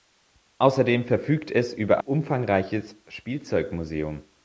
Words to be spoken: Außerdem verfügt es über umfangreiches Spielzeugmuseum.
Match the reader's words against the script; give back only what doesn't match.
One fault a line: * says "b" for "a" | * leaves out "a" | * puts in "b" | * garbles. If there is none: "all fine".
all fine